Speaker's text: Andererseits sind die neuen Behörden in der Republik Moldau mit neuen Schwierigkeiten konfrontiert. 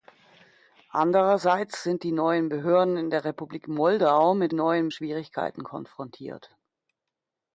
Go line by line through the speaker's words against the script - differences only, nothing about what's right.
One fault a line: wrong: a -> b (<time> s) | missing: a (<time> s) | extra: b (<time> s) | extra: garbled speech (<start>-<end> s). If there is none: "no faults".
no faults